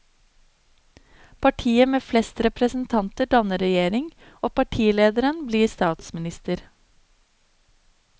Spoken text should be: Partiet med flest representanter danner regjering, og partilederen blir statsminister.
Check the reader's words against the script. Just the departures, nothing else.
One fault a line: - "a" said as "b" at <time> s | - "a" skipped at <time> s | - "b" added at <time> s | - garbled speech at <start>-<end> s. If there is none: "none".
none